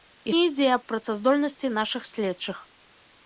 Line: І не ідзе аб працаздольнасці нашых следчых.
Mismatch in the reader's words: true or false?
false